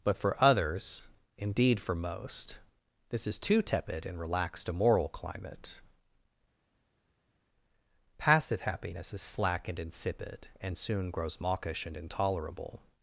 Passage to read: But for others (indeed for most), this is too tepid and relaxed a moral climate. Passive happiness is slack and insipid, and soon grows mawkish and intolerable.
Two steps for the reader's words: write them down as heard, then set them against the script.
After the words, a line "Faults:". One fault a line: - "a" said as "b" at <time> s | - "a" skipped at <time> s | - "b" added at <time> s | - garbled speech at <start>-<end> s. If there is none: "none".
But for others (indeed for most), this is too tepid and relaxed a moral climate. Passive happiness is slack and insipid, and soon grows mawkish and intolerable.
Faults:
none